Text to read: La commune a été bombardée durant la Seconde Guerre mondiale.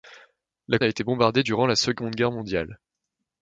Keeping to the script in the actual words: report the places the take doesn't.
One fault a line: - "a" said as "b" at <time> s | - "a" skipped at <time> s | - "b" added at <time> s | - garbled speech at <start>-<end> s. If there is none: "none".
- "commune" skipped at 0.8 s